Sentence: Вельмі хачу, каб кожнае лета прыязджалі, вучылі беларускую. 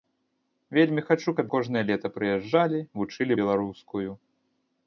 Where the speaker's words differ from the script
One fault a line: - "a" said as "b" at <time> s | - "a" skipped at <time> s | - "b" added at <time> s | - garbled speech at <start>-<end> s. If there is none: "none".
none